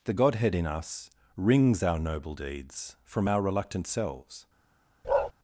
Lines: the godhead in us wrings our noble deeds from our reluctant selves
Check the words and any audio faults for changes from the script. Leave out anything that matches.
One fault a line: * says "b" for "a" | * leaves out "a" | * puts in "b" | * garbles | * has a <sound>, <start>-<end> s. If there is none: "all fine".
* has a bark, 5.0-5.3 s